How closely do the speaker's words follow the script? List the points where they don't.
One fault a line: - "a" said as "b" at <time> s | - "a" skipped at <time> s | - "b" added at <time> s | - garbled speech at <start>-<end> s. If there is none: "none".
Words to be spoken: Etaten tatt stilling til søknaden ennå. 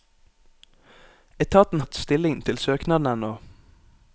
none